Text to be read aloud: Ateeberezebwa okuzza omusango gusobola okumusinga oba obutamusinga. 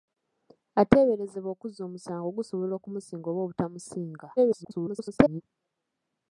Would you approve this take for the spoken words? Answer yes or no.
no